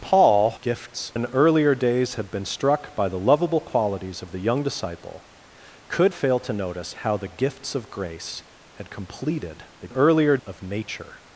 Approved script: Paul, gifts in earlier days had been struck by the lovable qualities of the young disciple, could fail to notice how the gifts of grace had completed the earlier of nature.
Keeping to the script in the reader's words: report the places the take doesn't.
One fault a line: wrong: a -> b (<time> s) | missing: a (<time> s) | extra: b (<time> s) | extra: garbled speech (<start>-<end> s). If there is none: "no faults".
no faults